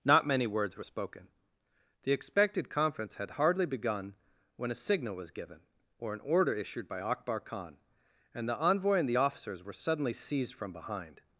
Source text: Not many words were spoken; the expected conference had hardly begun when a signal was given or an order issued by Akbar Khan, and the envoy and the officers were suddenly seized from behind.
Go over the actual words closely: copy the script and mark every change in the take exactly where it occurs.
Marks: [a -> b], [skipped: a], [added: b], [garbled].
Not many words were spoken; the expected conference had hardly begun when a signal was given or an order issued by Akbar Khan, and the envoy and the officers were suddenly seized from behind.